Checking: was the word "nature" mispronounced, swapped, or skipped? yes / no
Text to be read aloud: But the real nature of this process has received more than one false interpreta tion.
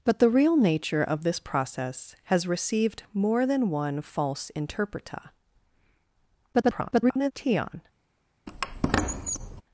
no